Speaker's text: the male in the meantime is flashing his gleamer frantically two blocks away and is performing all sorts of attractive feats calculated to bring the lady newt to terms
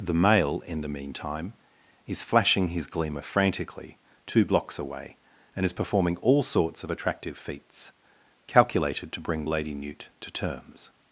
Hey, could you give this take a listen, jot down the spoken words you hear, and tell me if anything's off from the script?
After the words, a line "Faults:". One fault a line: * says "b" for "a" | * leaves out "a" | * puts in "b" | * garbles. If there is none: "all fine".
the male in the meantime is flashing his gleamer frantically two blocks away and is performing all sorts of attractive feats calculated to bring lady newt to terms
Faults:
* leaves out "the"